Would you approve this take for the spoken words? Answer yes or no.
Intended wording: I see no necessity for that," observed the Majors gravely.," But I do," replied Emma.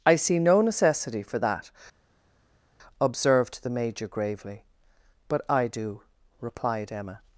no